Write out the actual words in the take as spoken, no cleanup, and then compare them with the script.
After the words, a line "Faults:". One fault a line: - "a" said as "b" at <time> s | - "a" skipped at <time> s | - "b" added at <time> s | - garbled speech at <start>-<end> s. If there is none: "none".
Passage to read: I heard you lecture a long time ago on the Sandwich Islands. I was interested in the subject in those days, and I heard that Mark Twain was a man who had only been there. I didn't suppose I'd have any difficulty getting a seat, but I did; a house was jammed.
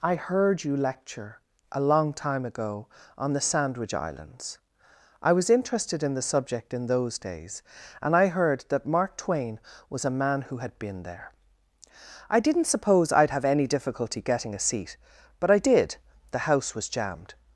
I heard you lecture a long time ago on the Sandwich Islands. I was interested in the subject in those days, and I heard that Mark Twain was a man who had been there. I didn't suppose I'd have any difficulty getting a seat, but I did; the house was jammed.
Faults:
- "only" skipped at 10.8 s
- "a" said as "the" at 16.3 s